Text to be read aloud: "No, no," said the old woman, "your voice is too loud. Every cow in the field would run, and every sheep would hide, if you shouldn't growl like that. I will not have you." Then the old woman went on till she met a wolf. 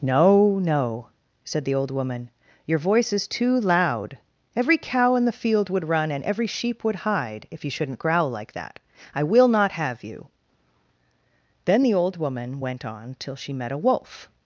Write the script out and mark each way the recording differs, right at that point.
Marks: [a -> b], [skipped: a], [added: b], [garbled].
"No, no," said the old woman, "your voice is too loud. Every cow in the field would run, and every sheep would hide, if you shouldn't growl like that. I will not have you." Then the old woman went on till she met a wolf.